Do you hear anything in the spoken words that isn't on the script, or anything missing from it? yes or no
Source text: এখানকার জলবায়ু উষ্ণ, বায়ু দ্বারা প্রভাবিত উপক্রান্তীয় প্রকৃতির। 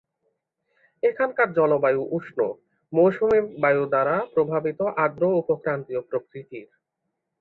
yes